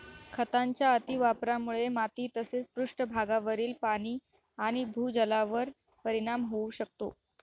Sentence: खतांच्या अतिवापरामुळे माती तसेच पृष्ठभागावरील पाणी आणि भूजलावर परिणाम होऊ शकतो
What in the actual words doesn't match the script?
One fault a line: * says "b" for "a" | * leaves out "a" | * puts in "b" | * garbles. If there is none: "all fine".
all fine